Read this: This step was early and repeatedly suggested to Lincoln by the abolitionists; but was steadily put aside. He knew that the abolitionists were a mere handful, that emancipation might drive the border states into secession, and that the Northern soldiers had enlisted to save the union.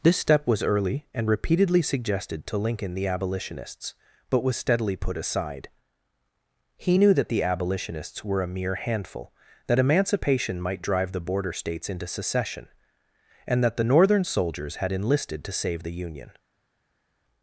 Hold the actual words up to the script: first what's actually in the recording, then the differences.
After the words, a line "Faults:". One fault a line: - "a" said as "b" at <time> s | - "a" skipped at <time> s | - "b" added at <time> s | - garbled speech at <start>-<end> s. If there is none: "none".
This step was early and repeatedly suggested to Lincoln the abolitionists; but was steadily put aside. He knew that the abolitionists were a mere handful, that emancipation might drive the border states into secession, and that the Northern soldiers had enlisted to save the union.
Faults:
- "by" skipped at 3.0 s